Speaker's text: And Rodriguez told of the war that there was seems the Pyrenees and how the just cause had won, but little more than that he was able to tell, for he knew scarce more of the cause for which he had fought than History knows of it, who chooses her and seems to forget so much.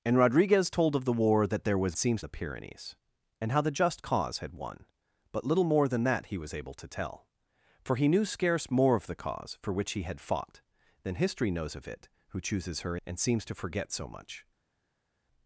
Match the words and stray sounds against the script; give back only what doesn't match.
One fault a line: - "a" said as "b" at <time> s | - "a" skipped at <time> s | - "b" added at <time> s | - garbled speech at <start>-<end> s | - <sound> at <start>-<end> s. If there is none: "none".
none